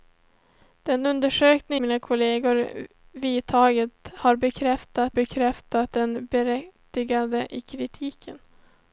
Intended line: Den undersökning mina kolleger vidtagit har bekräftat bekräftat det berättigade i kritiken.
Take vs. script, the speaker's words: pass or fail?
pass